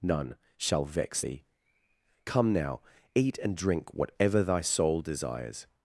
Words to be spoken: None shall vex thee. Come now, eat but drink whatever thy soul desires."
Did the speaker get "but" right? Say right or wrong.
wrong